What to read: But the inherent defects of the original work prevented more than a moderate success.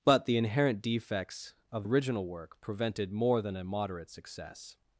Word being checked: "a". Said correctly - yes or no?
yes